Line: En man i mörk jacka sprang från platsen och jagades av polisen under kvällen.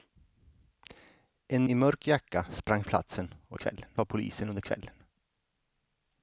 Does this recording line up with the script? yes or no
no